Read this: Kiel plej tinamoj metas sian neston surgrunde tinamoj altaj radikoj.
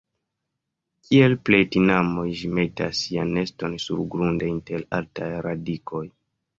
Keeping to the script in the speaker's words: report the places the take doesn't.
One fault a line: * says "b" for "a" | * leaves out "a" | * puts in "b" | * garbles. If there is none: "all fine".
* puts in "ĝi"
* says "inter" for "tinamoj"